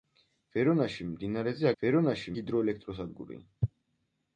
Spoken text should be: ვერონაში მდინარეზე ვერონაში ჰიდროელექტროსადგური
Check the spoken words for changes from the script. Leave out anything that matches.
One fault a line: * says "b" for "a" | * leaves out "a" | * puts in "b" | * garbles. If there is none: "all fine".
all fine